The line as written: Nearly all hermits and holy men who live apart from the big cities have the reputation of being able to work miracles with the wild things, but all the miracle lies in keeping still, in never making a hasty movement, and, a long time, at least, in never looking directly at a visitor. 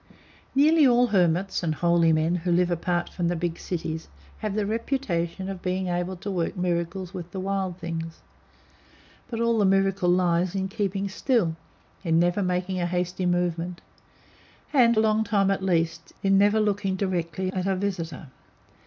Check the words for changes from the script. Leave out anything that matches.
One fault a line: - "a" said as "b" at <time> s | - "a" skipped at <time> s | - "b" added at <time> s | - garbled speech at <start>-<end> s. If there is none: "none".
none